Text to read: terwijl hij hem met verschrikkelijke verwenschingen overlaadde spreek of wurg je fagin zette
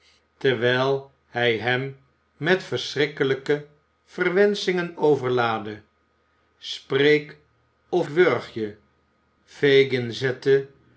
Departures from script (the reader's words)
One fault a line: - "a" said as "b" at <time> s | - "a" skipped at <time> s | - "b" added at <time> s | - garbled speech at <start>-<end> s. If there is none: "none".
none